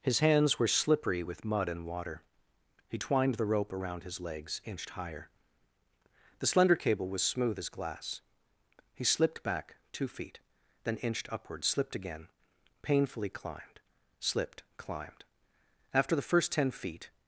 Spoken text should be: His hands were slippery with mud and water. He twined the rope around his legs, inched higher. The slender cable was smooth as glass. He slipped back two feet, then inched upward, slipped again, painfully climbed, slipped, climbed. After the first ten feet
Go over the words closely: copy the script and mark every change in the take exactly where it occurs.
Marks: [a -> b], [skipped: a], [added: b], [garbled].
His hands were slippery with mud and water. He twined the rope around his legs, inched higher. The slender cable was smooth as glass. He slipped back two feet, then inched upward, slipped again, painfully climbed, slipped, climbed. After the first ten feet